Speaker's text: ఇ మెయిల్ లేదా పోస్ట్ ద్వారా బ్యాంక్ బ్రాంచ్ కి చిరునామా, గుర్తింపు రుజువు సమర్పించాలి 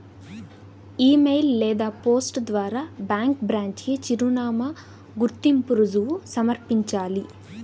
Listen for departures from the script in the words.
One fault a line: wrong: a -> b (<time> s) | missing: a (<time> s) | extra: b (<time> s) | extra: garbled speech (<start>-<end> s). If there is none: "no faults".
no faults